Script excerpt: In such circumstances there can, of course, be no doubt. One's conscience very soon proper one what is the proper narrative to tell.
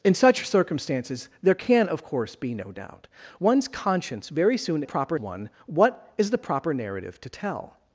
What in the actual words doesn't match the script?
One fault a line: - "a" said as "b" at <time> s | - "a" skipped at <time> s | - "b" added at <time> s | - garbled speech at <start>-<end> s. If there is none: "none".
none